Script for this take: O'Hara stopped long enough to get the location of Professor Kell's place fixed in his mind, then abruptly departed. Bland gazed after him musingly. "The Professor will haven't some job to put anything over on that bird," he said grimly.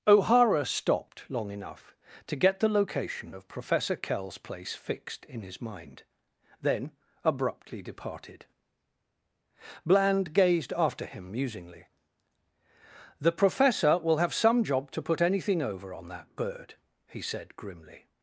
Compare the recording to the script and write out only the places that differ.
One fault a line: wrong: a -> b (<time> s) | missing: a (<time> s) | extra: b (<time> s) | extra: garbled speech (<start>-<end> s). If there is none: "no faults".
wrong: haven't -> have (14.2 s)